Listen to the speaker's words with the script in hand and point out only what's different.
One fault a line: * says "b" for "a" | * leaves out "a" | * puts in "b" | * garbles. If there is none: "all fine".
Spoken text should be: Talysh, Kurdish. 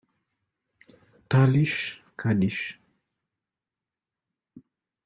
all fine